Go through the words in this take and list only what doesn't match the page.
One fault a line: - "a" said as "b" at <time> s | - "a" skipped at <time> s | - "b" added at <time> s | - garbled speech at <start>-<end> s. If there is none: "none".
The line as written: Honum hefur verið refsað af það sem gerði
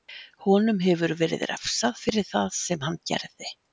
- "af" said as "fyrir" at 2.1 s
- "hann" added at 2.9 s